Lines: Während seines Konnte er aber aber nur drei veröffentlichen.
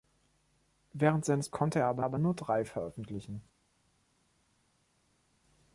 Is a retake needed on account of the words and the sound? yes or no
no